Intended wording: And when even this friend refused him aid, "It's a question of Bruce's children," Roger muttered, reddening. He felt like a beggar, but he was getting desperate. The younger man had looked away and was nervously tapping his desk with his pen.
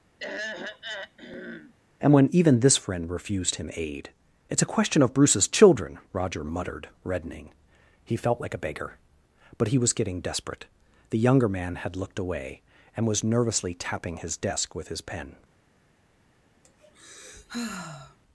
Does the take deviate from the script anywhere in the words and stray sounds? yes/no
yes